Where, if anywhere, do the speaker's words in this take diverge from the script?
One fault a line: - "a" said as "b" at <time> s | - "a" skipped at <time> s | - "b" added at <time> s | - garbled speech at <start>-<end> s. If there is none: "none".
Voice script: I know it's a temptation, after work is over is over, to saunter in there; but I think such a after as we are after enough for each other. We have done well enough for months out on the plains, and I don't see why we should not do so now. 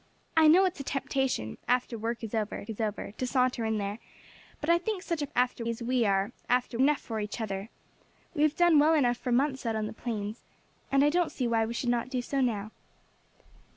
none